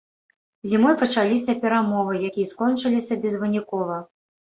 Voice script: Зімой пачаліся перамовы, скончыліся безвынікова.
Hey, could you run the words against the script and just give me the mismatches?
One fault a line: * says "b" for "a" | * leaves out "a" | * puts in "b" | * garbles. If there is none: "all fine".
* puts in "якія"